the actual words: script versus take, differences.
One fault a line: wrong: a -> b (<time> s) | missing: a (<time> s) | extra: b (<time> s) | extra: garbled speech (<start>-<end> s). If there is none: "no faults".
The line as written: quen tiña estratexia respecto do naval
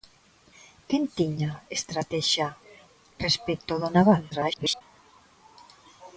extra: garbled speech (4.3-4.8 s)